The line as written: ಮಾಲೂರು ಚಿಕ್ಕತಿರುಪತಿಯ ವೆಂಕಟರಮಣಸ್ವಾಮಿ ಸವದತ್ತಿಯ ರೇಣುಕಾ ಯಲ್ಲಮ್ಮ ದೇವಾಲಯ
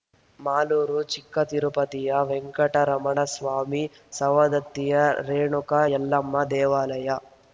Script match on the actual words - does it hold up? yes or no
yes